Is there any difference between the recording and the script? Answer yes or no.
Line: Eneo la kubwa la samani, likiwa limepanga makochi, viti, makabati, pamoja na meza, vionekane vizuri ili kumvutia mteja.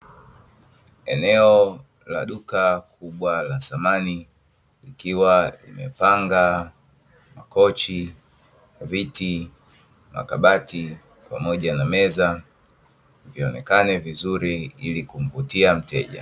yes